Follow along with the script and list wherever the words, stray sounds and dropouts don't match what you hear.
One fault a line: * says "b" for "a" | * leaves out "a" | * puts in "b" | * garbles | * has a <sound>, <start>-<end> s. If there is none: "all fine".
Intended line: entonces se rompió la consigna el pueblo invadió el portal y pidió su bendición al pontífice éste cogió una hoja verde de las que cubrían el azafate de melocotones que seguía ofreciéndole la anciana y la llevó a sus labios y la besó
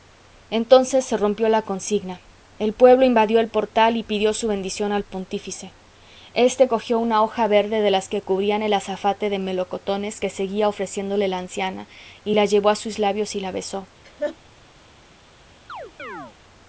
* has a laugh, 14.0-14.4 s
* has a chirp, 15.7-16.4 s